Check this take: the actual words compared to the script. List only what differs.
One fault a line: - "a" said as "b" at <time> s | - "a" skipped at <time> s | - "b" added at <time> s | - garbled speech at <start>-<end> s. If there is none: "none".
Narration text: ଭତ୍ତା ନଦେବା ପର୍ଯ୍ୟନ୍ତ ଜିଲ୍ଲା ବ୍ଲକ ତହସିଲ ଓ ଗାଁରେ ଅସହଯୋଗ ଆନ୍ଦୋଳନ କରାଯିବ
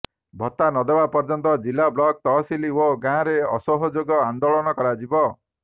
none